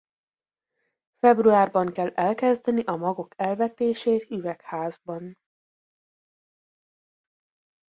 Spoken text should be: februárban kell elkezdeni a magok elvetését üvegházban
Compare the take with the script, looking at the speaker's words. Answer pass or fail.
pass